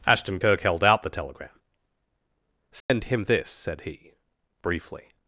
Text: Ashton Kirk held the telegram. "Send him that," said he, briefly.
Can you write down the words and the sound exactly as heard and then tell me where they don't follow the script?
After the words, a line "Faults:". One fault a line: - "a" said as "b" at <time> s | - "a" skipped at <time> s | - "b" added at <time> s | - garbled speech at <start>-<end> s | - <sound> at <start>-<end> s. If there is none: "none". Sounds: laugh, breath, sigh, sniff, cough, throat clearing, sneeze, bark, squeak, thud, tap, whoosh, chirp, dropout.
Ashton Kirk held out the telegram. "Send him this," said he, briefly.
Faults:
- "out" added at 0.8 s
- dropout at 2.8-2.9 s
- "that" said as "this" at 3.2 s